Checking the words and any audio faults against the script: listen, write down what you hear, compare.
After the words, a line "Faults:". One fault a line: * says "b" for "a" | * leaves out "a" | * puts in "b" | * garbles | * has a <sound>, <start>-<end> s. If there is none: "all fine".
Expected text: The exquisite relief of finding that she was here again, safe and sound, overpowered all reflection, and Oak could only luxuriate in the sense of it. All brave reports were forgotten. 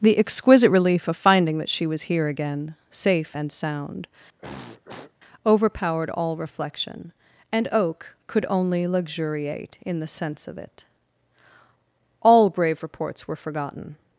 The exquisite relief of finding that she was here again, safe and sound, overpowered all reflection, and Oak could only luxuriate in the sense of it. All brave reports were forgotten.
Faults:
* has a throat clearing, 4.4-5.1 s